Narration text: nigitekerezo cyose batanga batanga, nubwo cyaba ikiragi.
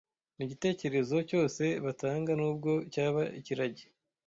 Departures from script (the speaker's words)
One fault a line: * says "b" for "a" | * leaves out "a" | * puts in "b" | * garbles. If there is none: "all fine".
* leaves out "batanga"